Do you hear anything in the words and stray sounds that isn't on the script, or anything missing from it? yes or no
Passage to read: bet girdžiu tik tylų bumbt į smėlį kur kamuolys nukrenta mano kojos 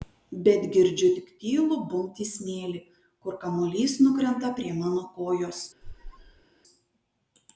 yes